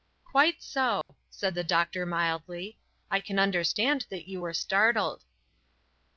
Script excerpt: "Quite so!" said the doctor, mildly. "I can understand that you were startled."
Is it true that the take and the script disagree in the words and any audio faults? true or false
true